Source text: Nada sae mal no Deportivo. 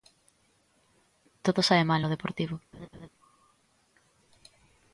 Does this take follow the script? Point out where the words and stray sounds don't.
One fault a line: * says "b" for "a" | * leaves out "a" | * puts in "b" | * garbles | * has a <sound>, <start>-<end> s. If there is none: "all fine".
* says "Todo" for "Nada"
* has a laugh, 2.7-3.1 s